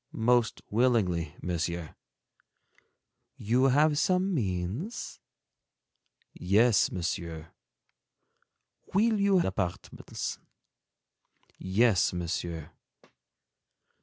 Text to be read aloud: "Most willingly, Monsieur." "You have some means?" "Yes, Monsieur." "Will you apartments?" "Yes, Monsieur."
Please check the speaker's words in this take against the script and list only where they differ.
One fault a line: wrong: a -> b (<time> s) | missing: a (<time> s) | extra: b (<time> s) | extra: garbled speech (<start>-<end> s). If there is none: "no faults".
no faults